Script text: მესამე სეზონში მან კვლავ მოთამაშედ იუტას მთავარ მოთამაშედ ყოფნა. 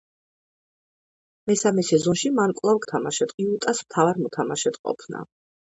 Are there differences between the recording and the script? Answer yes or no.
no